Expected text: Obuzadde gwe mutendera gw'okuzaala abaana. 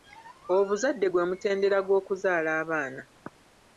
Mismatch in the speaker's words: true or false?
false